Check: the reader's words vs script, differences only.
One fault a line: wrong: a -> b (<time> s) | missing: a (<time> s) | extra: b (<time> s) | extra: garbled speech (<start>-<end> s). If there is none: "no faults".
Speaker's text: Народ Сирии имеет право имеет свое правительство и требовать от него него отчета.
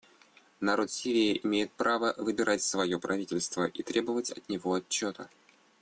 wrong: имеет -> выбирать (2.2 s)
missing: него (4.7 s)